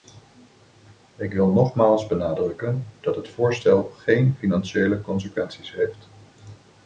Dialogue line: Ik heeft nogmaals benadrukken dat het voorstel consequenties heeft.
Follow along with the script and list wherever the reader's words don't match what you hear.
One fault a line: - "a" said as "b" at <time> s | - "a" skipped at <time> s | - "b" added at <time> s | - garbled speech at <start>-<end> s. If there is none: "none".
- "heeft" said as "wil" at 1.3 s
- "geen financiële" added at 3.8 s